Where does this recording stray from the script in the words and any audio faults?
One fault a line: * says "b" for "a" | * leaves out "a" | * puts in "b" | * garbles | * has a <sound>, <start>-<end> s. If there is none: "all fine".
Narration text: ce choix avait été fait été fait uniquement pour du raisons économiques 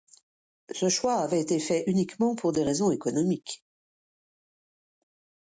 * leaves out "été fait"
* says "des" for "du"